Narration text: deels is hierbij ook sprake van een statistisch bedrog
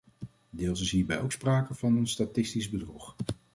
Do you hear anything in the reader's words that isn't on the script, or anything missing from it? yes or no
no